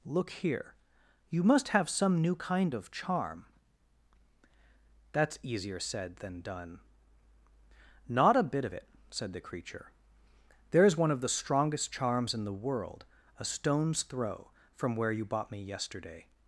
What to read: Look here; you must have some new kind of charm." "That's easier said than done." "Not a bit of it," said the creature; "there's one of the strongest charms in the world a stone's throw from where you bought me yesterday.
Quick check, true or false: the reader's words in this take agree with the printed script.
true